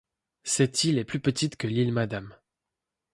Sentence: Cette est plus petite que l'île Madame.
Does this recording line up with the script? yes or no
no